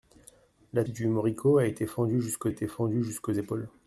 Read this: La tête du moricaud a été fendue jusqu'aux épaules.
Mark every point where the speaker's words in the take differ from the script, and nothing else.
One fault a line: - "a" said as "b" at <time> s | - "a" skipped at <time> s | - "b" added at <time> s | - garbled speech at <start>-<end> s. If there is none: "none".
- "tête" skipped at 0.8 s
- "été fendue jusqu'aux" added at 2.5 s